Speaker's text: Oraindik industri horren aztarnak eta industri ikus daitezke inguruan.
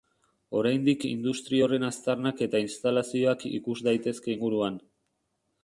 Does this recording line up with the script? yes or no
no